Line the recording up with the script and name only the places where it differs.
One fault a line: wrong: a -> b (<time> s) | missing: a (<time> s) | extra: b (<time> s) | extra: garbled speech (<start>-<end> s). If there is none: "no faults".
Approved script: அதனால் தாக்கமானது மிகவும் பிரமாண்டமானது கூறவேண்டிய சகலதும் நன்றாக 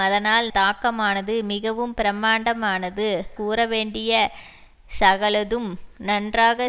no faults